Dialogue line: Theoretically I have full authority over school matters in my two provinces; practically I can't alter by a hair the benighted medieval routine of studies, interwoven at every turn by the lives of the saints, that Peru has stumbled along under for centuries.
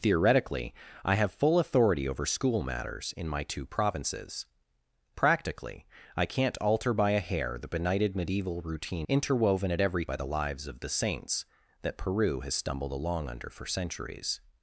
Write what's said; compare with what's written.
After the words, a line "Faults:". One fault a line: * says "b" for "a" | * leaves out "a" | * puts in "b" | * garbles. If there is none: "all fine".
Theoretically I have full authority over school matters in my two provinces; practically I can't alter by a hair the benighted medieval routine interwoven at every by the lives of the saints, that Peru has stumbled along under for centuries.
Faults:
* leaves out "of studies"
* leaves out "turn"